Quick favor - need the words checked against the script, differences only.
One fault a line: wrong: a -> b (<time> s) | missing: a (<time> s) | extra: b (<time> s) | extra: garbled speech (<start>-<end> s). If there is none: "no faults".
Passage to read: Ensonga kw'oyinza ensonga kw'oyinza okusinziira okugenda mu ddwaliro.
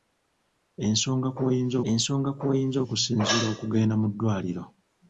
no faults